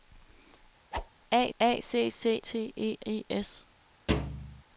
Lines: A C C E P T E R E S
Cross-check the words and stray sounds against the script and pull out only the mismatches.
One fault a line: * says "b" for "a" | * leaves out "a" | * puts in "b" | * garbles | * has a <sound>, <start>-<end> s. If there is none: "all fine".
* has a whoosh, 0.9-1.1 s
* puts in "a"
* leaves out "E P"
* leaves out "R"
* has a thud, 4.1-4.6 s